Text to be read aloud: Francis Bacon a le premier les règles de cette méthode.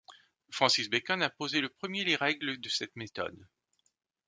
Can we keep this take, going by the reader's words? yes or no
no